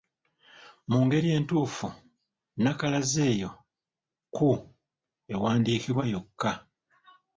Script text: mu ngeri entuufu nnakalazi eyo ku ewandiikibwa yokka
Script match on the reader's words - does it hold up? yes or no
yes